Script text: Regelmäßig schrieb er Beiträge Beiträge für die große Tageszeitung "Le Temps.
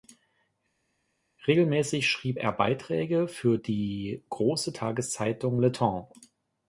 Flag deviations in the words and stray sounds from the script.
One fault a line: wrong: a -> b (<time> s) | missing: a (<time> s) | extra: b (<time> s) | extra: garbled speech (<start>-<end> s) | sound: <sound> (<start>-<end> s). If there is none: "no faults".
missing: Beiträge (3.3 s)